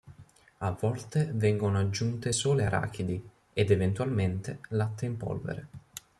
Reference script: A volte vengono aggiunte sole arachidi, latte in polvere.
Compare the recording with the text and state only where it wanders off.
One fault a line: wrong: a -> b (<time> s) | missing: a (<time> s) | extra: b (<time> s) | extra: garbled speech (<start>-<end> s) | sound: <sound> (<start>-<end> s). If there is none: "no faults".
extra: ed eventualmente (3.5 s)